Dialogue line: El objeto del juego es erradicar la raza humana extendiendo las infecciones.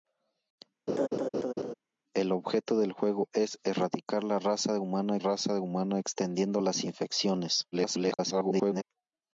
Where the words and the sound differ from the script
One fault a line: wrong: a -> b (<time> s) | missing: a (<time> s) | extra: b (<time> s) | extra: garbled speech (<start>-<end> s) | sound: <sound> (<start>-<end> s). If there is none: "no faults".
sound: laugh (0.9-1.7 s)
extra: raza humana (5.2 s)
extra: garbled speech (7.7-8.8 s)